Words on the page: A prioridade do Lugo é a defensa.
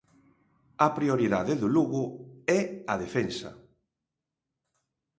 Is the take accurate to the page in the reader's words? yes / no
yes